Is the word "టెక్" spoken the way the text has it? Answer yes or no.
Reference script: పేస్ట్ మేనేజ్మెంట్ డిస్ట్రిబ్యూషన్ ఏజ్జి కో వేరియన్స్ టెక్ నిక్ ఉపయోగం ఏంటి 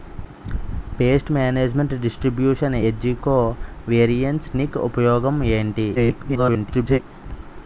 no